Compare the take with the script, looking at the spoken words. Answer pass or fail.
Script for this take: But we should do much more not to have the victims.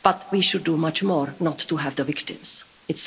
pass